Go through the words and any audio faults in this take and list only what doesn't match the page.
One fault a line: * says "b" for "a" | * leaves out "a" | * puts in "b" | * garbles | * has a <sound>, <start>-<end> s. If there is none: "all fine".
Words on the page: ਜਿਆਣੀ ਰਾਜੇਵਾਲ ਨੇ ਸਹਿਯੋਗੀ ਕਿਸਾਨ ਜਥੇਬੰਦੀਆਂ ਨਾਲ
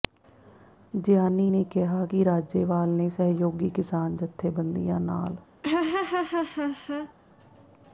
* puts in "ਨੇ ਕਿਹਾ ਕਿ"
* has a laugh, 5.6-7.1 s